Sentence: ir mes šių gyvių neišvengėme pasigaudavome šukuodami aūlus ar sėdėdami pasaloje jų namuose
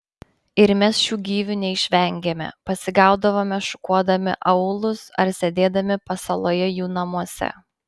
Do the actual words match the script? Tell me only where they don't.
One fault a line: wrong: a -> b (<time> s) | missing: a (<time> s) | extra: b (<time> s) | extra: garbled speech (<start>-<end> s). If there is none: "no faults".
no faults